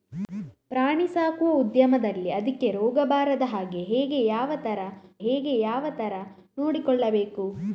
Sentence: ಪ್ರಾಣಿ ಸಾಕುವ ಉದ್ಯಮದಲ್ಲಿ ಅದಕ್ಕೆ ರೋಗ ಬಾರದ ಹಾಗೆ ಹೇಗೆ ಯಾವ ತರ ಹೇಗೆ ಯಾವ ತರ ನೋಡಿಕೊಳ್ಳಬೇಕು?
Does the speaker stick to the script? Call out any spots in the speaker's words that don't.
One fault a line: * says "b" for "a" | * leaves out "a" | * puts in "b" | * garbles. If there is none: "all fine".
all fine